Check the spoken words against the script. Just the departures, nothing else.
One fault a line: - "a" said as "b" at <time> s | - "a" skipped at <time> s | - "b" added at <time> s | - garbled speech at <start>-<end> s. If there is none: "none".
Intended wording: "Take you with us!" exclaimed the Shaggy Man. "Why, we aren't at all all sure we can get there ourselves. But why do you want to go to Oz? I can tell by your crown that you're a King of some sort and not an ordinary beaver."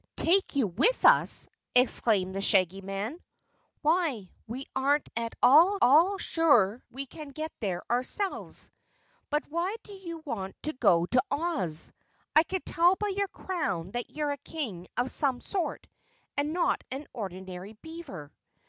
none